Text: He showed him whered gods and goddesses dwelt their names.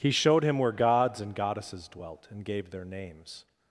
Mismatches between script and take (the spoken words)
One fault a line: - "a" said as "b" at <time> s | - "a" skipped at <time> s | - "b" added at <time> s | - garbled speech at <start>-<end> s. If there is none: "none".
- "whered" said as "where" at 0.6 s
- "and gave" added at 2.3 s